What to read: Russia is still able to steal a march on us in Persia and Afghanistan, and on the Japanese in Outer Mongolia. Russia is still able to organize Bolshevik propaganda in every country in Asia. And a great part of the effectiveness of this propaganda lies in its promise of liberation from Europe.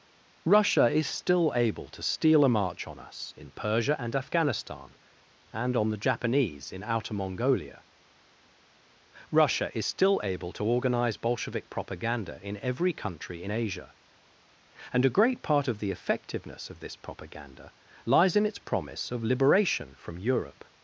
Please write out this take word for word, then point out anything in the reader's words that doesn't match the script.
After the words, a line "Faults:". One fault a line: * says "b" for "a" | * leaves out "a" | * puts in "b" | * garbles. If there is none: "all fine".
Russia is still able to steal a march on us in Persia and Afghanistan, and on the Japanese in Outer Mongolia. Russia is still able to organize Bolshevik propaganda in every country in Asia. And a great part of the effectiveness of this propaganda lies in its promise of liberation from Europe.
Faults:
all fine